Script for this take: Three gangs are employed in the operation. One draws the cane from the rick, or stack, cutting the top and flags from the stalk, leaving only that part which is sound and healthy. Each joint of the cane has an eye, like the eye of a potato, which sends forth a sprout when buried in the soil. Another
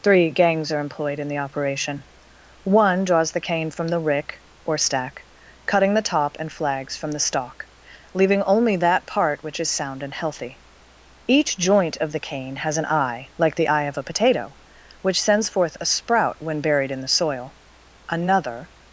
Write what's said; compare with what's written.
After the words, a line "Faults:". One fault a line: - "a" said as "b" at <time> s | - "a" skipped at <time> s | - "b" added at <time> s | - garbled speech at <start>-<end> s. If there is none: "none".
Three gangs are employed in the operation. One draws the cane from the rick, or stack, cutting the top and flags from the stalk, leaving only that part which is sound and healthy. Each joint of the cane has an eye, like the eye of a potato, which sends forth a sprout when buried in the soil. Another
Faults:
none